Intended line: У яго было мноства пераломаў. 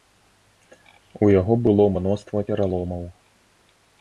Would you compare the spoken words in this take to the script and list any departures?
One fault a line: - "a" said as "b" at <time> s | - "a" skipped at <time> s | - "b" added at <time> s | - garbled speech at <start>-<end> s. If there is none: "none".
none